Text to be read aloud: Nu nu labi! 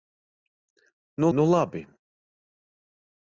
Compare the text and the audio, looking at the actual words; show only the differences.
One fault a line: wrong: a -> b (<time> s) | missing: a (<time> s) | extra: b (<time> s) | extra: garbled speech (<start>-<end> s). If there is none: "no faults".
no faults